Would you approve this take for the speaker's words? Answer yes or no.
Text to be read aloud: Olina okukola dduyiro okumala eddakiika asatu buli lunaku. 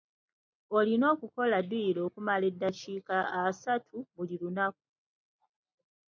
yes